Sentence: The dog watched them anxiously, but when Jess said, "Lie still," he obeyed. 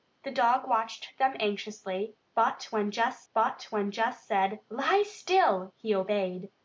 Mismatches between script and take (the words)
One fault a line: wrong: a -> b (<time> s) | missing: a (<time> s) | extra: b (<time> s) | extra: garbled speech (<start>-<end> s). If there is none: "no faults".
extra: but when Jess (3.3 s)